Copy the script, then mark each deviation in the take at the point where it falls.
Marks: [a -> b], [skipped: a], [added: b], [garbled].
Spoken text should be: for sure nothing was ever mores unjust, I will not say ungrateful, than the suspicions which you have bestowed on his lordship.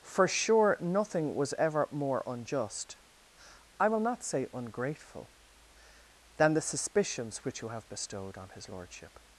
for sure nothing was ever [mores -> more] unjust, I will not say ungrateful, than the suspicions which you have bestowed on his lordship.